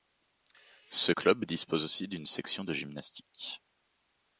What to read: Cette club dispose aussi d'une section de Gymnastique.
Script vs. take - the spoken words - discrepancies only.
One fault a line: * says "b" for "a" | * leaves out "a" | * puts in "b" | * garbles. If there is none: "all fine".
* says "Ce" for "Cette"